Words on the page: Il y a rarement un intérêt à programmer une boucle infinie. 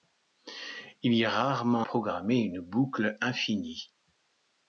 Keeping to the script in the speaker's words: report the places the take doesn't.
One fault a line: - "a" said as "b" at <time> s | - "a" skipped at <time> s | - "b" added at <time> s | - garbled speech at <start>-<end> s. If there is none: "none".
- "un intérêt à" skipped at 1.9 s